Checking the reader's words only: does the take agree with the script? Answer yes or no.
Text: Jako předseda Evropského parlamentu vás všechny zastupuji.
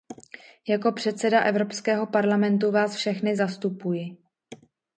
yes